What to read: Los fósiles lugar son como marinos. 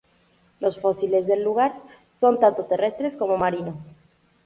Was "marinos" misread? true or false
false